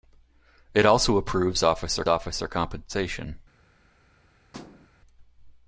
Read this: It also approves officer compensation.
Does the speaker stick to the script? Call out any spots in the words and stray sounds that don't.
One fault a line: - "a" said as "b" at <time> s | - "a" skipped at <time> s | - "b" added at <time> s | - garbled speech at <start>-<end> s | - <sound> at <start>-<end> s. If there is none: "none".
- "officer" added at 2.1 s
- thud at 4.5-4.9 s